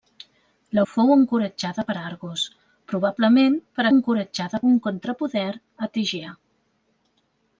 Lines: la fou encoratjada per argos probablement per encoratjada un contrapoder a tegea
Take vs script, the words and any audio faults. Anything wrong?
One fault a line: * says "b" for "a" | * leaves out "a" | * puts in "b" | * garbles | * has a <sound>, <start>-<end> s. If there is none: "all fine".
all fine